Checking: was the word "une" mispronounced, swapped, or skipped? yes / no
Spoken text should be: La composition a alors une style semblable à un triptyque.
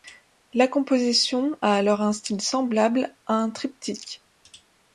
yes